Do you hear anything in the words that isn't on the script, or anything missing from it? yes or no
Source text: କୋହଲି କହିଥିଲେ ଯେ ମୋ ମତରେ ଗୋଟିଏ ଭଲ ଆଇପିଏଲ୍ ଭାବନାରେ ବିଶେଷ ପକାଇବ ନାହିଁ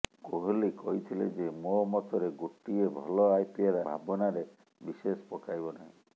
no